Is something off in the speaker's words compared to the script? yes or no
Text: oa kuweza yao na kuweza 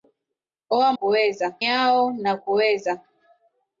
no